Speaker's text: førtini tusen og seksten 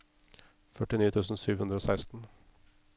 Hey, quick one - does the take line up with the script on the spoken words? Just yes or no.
no